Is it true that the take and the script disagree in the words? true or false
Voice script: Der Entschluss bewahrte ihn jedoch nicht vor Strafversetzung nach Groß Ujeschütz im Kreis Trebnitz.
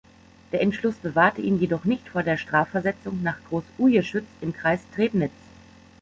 true